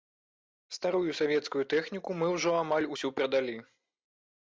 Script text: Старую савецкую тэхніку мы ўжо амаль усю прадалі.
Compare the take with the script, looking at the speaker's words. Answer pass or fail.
pass